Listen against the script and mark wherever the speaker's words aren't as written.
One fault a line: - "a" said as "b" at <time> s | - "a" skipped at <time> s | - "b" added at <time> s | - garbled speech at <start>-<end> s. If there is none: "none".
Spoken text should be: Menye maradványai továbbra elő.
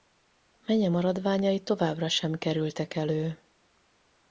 - "sem kerültek" added at 2.1 s